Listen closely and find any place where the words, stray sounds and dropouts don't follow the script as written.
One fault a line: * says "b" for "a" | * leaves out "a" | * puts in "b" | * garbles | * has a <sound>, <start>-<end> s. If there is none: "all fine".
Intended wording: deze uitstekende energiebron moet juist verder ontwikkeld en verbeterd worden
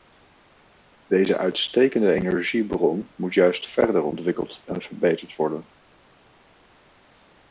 all fine